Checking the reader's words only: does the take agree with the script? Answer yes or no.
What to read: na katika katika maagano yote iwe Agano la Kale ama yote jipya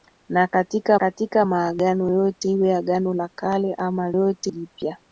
yes